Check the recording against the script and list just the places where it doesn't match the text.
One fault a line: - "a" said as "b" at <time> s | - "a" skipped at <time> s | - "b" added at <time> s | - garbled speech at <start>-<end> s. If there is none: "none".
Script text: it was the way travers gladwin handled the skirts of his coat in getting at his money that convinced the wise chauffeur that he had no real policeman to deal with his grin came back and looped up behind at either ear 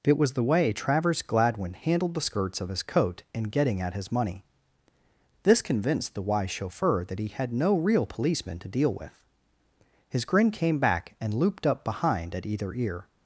- "that" said as "this" at 5.4 s